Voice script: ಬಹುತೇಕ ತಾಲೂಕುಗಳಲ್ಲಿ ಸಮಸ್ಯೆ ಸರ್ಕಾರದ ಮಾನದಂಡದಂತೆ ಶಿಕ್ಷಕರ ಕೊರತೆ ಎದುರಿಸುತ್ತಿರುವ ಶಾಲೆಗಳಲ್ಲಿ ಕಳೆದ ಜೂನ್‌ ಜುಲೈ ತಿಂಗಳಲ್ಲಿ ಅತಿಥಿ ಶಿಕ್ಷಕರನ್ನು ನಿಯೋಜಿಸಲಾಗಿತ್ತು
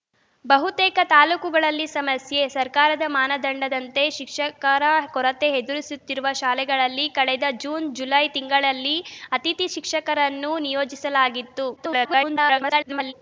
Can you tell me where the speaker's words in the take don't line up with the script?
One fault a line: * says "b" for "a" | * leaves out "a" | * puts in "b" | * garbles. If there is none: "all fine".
* garbles